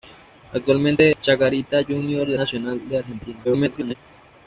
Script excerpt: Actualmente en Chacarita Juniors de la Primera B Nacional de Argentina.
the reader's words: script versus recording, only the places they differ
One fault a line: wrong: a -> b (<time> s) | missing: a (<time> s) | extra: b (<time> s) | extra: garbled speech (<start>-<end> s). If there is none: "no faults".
missing: en (1.1 s)
missing: la Primera B (2.4 s)
extra: garbled speech (3.4-4.0 s)